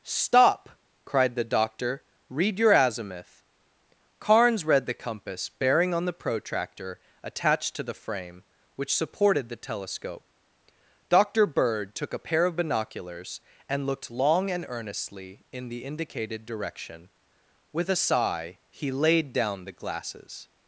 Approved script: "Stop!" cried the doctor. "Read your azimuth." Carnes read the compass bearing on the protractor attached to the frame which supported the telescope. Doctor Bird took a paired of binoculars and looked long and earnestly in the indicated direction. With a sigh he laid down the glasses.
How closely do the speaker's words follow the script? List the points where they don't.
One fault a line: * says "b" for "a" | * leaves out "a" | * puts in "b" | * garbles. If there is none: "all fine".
* says "pair" for "paired"